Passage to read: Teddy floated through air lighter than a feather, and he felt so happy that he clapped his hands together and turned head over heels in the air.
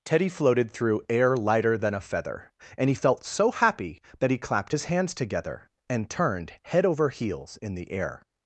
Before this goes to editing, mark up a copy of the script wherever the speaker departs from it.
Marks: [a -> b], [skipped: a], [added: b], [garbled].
Teddy floated through air lighter than a feather, and he felt so happy that he clapped his hands together and turned head over heels in the air.